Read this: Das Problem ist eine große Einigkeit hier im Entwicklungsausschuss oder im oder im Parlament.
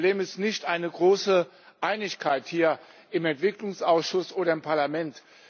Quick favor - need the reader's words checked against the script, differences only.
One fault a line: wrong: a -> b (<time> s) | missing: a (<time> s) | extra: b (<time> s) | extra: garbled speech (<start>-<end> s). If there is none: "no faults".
extra: nicht (0.4 s)
missing: oder im (4.6 s)